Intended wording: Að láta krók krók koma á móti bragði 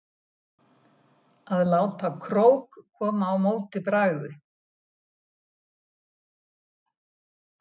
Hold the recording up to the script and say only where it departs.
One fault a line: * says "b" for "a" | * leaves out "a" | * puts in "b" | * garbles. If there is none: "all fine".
* leaves out "krók"